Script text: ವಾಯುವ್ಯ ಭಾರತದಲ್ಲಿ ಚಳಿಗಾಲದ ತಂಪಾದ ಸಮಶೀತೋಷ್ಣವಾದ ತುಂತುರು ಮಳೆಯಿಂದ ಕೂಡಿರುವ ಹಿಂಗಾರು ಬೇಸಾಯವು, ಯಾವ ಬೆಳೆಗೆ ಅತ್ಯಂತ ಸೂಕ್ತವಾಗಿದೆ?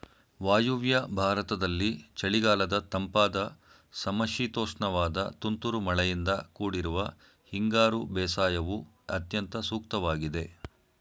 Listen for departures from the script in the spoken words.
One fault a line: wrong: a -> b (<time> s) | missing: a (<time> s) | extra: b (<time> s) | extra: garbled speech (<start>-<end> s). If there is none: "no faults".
missing: ಯಾವ ಬೆಳೆಗೆ (8.8 s)